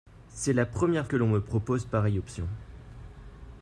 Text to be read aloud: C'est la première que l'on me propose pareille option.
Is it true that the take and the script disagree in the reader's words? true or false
false